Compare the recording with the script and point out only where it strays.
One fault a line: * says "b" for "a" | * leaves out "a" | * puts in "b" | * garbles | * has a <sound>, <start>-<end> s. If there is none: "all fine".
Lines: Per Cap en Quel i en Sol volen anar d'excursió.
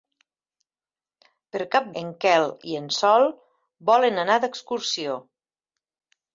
all fine